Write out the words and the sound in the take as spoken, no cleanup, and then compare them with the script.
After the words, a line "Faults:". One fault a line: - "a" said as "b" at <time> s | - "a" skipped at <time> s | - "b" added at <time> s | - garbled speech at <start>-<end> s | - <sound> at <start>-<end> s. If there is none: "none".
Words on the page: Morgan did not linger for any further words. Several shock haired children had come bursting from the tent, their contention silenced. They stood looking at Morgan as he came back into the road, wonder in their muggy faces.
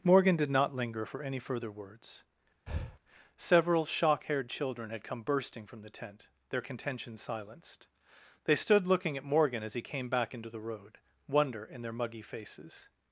Morgan did not linger for any further words. Several shock haired children had come bursting from the tent, their contention silenced. They stood looking at Morgan as he came back into the road, wonder in their muggy faces.
Faults:
- breath at 2.7-3.0 s